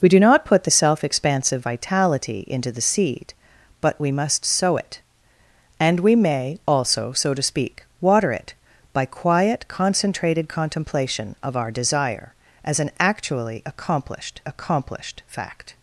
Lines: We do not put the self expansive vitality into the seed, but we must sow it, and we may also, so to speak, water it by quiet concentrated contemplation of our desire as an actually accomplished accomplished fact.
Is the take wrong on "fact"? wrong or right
right